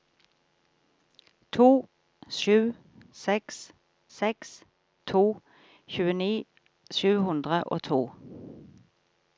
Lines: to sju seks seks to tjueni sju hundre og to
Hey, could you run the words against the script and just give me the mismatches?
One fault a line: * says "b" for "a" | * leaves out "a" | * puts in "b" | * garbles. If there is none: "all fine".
all fine